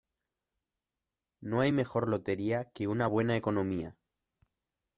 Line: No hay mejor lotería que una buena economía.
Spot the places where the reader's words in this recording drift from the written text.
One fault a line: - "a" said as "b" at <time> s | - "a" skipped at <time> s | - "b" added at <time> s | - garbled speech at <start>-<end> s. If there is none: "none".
none